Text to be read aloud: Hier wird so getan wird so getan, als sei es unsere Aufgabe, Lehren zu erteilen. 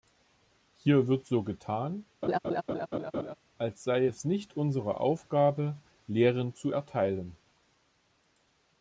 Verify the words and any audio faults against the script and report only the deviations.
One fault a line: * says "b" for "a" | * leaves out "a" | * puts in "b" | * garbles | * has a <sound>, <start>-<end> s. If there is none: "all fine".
* leaves out "wird so getan"
* has a laugh, 2.2-3.3 s
* puts in "nicht"